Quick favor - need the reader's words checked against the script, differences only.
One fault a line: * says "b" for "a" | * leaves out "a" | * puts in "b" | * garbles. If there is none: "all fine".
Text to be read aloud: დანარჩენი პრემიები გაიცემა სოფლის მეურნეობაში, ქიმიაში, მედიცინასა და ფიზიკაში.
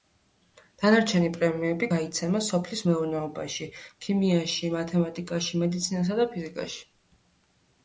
* puts in "მათემატიკაში"